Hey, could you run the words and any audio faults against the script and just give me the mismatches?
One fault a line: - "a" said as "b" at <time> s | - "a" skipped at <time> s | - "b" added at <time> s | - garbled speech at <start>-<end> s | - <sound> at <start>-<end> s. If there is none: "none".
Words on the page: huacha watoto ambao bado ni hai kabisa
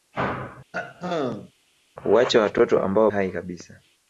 - throat clearing at 0.7-1.5 s
- "bado ni" skipped at 3.1 s